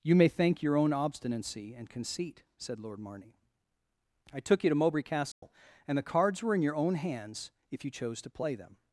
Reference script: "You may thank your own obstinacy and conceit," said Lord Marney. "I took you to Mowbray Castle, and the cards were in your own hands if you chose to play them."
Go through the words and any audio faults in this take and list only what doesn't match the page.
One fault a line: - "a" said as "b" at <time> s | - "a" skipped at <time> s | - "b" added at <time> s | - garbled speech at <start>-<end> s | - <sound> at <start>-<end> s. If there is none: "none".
- dropout at 5.3-5.4 s